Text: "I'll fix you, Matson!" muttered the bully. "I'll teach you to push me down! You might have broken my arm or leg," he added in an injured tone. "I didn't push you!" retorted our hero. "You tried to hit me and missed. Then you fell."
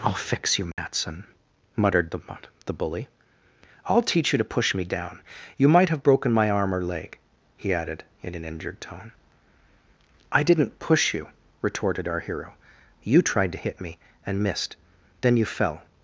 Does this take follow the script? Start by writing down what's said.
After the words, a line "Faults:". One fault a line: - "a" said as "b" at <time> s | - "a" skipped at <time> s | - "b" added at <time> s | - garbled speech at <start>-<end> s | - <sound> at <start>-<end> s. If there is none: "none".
"I'll fix you, Matson!" muttered the the bully. "I'll teach you to push me down! You might have broken my arm or leg," he added in an injured tone. "I didn't push you!" retorted our hero. "You tried to hit me and missed. Then you fell."
Faults:
- dropout at 0.7-0.8 s
- "the" added at 2.6 s